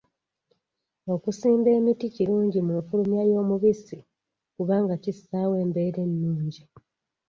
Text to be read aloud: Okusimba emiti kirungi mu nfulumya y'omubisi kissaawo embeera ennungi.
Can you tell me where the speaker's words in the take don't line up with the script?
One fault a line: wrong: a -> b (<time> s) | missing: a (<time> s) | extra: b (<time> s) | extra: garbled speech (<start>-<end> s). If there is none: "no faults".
extra: kubanga (4.6 s)